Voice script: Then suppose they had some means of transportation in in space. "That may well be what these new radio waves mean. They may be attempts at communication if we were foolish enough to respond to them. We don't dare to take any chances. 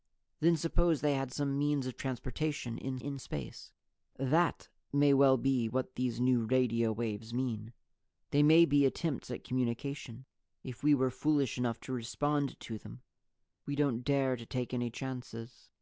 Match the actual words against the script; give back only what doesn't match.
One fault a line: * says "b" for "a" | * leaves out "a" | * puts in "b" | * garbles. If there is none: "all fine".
all fine